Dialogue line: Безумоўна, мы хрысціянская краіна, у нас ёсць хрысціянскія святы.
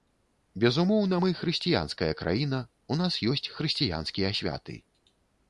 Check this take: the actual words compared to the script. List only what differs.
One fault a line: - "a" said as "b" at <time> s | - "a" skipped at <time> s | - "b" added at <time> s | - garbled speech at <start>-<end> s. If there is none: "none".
none